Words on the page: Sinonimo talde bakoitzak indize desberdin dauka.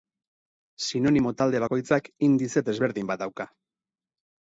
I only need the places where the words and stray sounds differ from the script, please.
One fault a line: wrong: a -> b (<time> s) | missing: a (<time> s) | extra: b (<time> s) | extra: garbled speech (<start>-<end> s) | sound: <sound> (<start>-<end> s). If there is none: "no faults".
extra: bat (3.1 s)